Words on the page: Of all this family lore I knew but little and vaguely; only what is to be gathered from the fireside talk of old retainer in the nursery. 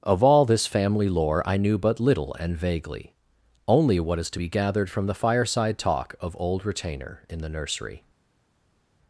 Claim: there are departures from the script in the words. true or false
false